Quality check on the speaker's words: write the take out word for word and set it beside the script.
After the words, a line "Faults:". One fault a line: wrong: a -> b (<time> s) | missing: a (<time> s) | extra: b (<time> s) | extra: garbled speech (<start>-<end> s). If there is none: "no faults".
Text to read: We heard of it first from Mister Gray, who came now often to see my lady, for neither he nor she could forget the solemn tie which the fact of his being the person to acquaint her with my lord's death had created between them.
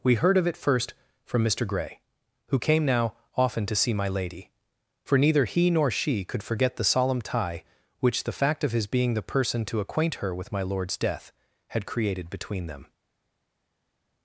We heard of it first from Mister Gray, who came now often to see my lady, for neither he nor she could forget the solemn tie which the fact of his being the person to acquaint her with my lord's death had created between them.
Faults:
no faults